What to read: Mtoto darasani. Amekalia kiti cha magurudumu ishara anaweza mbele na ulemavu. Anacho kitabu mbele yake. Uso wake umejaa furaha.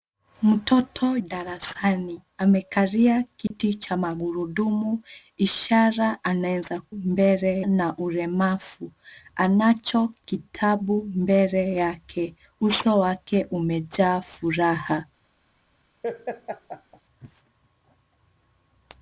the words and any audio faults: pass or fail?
fail